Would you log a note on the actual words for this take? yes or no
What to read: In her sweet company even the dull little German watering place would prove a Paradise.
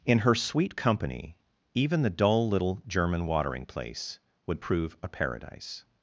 no